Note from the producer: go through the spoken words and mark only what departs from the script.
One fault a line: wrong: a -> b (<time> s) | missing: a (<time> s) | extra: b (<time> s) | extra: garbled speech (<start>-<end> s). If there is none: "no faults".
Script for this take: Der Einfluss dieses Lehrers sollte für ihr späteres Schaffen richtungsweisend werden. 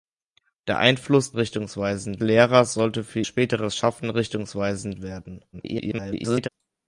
wrong: dieses -> richtungsweisend (1.3 s)
missing: ihr (3.2 s)
extra: garbled speech (5.5-6.5 s)